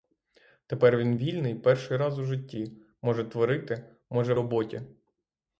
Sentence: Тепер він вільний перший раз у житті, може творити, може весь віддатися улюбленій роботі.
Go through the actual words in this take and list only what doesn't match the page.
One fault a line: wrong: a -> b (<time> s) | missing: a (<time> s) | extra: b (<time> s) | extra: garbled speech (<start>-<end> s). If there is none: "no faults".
missing: весь віддатися улюбленій (4.3 s)